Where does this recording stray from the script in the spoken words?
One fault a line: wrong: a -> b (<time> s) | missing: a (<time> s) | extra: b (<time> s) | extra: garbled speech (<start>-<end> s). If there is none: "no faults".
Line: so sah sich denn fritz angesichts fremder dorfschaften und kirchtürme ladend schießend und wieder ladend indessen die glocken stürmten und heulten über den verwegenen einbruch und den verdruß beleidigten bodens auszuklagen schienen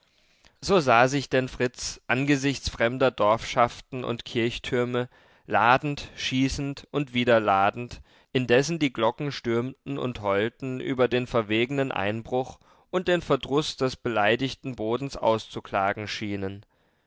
extra: des (13.8 s)